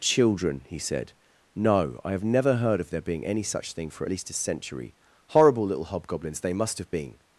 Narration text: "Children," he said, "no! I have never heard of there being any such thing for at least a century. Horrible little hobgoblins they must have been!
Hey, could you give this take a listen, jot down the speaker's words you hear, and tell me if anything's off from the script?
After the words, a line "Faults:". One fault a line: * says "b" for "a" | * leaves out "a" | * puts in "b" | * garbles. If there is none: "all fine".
"Children," he said, "no! I have never heard of there being any such thing for at least a century. Horrible little hobgoblins they must have been!
Faults:
all fine